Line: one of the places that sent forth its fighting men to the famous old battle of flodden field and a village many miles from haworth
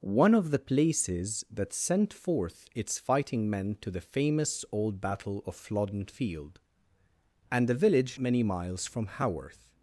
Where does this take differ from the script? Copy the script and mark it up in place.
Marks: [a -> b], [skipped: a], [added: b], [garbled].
one of the places that sent forth its fighting men to the famous old battle of flodden field and a village many miles from haworth